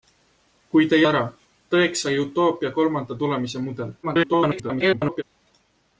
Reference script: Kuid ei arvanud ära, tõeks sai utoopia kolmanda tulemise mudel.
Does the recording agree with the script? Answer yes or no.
no